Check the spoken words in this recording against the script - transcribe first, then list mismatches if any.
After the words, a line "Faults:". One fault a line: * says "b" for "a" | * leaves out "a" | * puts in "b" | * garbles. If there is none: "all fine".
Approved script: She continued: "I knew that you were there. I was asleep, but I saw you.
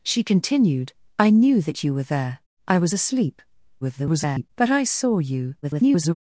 She continued: "I knew that you were there. I was asleep, [garbled] but I saw you. [garbled]
Faults:
* garbles
* garbles